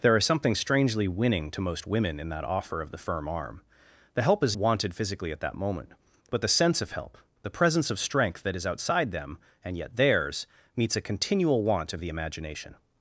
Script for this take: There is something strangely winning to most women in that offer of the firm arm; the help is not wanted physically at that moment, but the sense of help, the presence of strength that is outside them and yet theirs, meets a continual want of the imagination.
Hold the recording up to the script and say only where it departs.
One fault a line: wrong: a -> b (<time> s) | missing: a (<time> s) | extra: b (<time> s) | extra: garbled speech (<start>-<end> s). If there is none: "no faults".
missing: not (4.6 s)